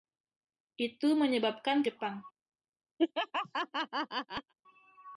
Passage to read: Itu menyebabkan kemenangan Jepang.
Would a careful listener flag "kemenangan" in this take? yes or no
yes